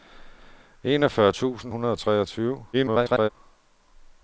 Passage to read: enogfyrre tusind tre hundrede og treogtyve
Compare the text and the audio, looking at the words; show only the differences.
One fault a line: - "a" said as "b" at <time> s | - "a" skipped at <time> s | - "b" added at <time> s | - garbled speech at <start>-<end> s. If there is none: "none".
- "tre" skipped at 1.7 s
- garbled speech at 2.7-3.3 s